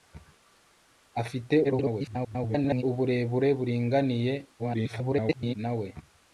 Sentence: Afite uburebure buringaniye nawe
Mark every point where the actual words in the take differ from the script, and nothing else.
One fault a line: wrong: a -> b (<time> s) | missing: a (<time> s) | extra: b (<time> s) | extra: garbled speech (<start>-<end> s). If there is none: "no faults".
extra: garbled speech (1.6-2.8 s)
extra: garbled speech (4.6-5.5 s)